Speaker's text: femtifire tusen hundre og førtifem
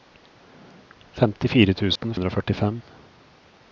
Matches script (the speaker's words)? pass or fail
pass